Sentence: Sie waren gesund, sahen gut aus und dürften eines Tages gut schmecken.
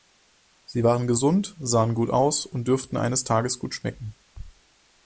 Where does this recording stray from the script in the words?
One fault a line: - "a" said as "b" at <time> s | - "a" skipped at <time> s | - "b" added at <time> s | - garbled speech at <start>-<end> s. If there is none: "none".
none